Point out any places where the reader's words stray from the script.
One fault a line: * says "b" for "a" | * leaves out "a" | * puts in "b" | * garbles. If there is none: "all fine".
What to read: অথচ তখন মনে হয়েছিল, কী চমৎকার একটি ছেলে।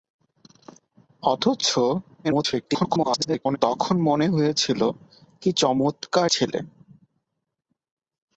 * garbles
* leaves out "একটি"